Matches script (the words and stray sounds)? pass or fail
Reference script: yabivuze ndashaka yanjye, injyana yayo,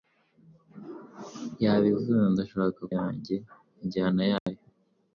fail